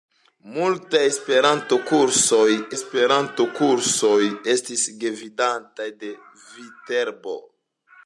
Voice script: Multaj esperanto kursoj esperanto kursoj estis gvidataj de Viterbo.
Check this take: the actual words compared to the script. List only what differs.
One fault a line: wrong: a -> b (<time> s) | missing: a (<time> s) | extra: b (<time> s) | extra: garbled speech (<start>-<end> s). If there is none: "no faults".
no faults